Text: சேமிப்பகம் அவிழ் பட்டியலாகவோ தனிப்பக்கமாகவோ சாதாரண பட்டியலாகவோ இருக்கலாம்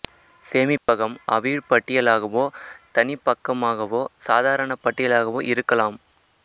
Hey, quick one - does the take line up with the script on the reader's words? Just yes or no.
yes